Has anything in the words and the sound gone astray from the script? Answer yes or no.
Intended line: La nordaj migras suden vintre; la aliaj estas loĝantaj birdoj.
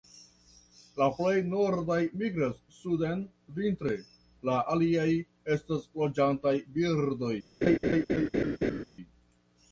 yes